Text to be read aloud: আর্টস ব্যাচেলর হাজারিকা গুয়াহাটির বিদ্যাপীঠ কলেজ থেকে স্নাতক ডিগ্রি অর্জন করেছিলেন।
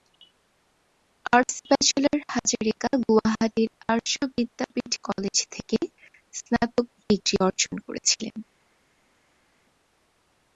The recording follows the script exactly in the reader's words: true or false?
false